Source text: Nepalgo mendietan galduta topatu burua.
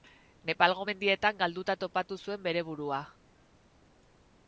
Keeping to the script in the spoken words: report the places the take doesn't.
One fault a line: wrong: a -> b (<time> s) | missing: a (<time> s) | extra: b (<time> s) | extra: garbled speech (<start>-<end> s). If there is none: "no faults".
extra: zuen bere (2.2 s)